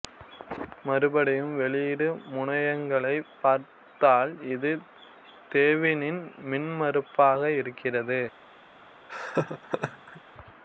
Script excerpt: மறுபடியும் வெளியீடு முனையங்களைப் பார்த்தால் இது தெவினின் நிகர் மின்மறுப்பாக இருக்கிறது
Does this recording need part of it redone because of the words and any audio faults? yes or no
yes